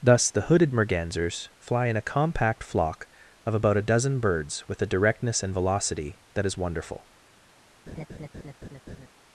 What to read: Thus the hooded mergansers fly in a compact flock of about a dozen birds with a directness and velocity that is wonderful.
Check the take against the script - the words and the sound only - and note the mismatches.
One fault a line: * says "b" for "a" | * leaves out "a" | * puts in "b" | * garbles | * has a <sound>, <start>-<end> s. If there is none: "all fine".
* has a laugh, 7.9-9.1 s